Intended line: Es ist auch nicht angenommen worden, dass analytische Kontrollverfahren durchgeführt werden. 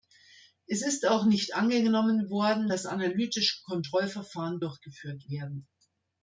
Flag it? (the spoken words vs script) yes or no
no